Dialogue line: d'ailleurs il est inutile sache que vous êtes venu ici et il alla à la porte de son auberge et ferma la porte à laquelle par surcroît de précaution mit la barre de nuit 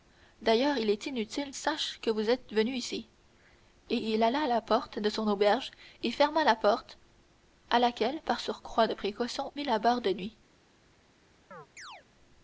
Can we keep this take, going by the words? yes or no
yes